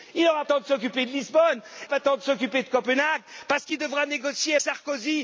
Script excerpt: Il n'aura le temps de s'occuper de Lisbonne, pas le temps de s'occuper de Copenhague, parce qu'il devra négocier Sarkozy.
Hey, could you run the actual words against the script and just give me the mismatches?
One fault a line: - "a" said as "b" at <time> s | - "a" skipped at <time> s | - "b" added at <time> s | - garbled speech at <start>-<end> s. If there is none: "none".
none